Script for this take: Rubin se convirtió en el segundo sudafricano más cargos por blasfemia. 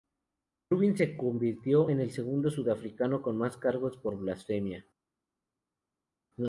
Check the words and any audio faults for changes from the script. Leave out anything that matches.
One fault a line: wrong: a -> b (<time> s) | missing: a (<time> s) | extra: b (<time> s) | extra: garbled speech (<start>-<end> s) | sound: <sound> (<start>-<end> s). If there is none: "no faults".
extra: con (3.2 s)